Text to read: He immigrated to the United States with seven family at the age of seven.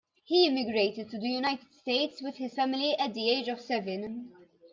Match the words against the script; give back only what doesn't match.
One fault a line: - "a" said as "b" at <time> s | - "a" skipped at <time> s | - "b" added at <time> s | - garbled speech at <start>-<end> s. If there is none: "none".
- "seven" said as "his" at 2.4 s